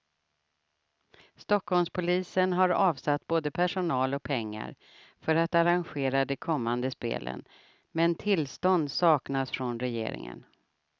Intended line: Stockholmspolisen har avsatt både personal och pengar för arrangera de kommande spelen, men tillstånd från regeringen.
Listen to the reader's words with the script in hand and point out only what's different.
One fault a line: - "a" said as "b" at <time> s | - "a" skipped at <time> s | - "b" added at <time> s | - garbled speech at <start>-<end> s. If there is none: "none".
- "att" added at 5.3 s
- "saknas" added at 8.9 s